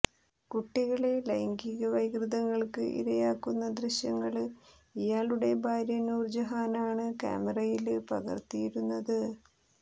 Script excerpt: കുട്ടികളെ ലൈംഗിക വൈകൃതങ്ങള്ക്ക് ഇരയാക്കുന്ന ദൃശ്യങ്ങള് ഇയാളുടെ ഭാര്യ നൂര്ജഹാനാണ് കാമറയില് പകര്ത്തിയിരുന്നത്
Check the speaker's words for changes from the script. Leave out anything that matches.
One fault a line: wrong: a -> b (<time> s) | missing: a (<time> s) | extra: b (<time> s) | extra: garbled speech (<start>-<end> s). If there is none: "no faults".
no faults